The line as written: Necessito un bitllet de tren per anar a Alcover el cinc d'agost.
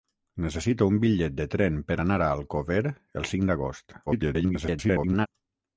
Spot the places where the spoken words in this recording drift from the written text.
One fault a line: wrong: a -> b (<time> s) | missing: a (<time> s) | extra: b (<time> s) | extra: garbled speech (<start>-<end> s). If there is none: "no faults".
extra: garbled speech (4.1-5.3 s)